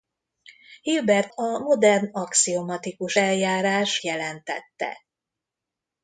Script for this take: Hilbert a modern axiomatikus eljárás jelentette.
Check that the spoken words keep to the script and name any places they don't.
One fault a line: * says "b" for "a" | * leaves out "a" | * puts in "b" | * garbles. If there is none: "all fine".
all fine